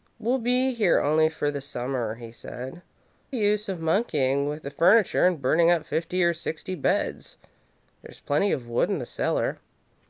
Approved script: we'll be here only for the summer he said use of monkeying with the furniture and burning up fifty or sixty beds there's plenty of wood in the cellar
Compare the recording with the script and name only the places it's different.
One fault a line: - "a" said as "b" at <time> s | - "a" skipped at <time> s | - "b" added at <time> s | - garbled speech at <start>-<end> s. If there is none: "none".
none